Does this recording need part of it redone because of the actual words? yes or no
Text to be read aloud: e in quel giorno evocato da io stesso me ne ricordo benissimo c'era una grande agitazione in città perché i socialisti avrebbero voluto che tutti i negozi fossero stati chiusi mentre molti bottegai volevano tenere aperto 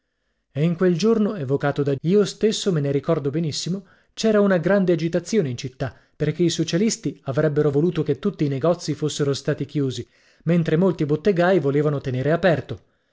no